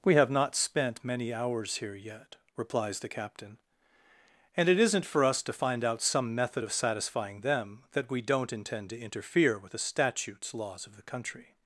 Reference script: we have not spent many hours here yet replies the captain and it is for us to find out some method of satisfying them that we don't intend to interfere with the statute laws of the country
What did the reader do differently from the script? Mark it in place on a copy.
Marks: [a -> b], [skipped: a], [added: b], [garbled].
we have not spent many hours here yet replies the captain and it [is -> isn't] for us to find out some method of satisfying them that we don't intend to interfere with the [statute -> statutes] laws of the country